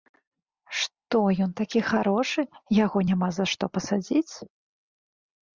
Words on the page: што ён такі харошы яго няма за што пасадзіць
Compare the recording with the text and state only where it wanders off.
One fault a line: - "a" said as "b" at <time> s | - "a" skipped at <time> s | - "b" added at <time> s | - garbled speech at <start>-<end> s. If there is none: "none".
none